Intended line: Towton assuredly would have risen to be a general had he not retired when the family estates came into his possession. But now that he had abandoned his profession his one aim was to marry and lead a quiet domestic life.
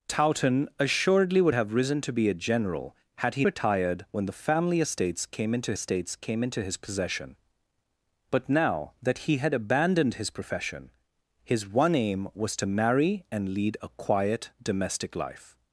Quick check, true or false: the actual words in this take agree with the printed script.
false